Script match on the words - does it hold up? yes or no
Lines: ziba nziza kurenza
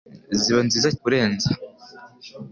yes